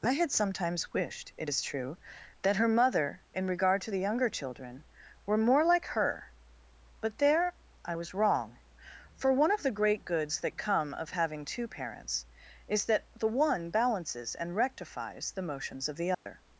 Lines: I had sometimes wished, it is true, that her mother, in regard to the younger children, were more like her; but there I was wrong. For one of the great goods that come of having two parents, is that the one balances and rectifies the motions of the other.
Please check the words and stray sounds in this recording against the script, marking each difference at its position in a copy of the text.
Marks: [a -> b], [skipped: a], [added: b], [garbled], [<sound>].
I had sometimes wished, it is true, that her mother, in regard to the younger children, were more like her; but there I was wrong. For one of the great goods that come of having two parents, is that the one balances and rectifies the motions of the other. [dropout]